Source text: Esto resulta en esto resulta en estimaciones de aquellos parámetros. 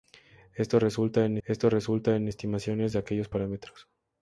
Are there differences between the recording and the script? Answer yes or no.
no